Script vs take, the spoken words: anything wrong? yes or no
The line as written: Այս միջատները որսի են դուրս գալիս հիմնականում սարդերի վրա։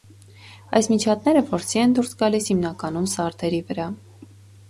no